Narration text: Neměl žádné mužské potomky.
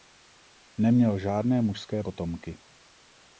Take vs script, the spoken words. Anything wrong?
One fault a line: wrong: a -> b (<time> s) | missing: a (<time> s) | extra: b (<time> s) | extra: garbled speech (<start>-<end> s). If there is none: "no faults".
no faults